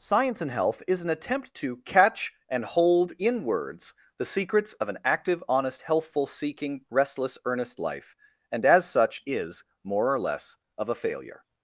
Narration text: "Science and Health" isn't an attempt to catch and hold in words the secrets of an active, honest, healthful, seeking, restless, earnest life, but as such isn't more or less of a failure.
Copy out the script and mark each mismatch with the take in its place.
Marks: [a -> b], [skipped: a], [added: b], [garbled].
"Science and Health" [isn't -> is] an attempt to catch and hold in words the secrets of an active, honest, healthful, seeking, restless, earnest life, [but -> and] as such [isn't -> is] more or less of a failure.